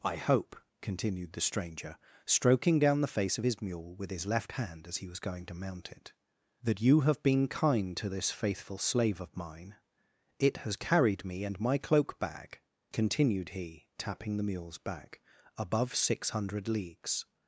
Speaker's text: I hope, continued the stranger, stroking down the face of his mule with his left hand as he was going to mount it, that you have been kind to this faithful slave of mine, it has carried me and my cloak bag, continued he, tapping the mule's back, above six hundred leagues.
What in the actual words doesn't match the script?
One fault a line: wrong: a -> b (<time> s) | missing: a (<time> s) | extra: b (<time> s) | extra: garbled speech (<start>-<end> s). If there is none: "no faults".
no faults